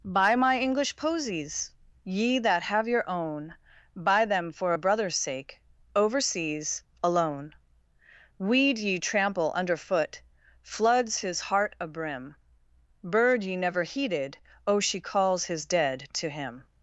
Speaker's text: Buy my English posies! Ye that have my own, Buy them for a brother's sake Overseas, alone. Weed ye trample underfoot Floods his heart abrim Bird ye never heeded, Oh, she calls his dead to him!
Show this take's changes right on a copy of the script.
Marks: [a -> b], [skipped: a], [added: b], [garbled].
Buy my English posies! Ye that have [my -> your] own, Buy them for a brother's sake Overseas, alone. Weed ye trample underfoot Floods his heart abrim Bird ye never heeded, Oh, she calls his dead to him!